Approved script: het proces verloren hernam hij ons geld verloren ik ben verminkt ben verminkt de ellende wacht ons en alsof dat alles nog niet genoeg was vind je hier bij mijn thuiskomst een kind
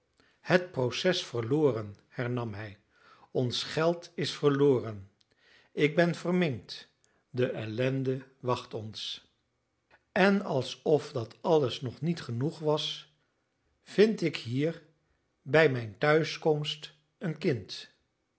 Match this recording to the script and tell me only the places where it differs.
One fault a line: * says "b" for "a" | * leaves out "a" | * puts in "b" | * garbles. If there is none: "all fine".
* puts in "is"
* leaves out "ben verminkt"
* says "ik" for "je"